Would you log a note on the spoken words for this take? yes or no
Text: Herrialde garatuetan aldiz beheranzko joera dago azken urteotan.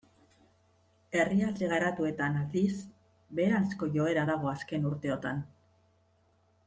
no